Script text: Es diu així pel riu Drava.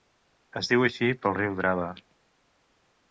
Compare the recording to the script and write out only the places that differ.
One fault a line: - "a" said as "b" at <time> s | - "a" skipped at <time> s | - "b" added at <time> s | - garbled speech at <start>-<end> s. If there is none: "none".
none